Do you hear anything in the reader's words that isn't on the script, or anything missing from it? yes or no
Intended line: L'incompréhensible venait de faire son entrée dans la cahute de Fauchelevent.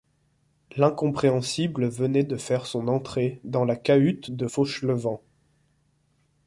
no